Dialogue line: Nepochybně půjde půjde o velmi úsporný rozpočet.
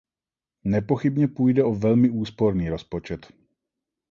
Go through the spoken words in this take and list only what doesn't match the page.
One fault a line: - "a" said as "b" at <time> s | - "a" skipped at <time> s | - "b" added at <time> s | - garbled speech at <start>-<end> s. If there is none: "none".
- "půjde" skipped at 1.6 s